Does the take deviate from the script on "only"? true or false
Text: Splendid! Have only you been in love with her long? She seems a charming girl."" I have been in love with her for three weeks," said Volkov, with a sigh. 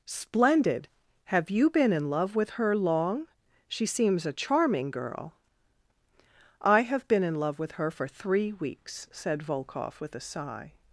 true